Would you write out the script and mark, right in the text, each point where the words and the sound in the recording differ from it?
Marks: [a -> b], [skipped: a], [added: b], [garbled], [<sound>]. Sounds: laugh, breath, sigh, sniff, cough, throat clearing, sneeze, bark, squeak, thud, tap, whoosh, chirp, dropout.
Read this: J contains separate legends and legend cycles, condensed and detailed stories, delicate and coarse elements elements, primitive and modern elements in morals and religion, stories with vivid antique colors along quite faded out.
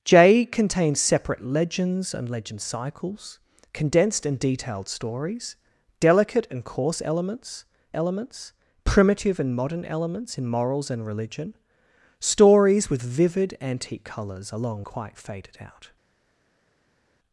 J contains separate legends and legend cycles, condensed and detailed stories, delicate and coarse elements elements, primitive and modern elements in morals and religion, stories with vivid antique colors along quite faded out.